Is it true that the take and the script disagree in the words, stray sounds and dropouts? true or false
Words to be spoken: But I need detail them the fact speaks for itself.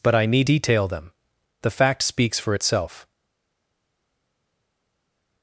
false